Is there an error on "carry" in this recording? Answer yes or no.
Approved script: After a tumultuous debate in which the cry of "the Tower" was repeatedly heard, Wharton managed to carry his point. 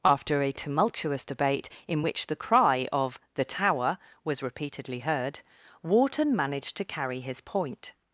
no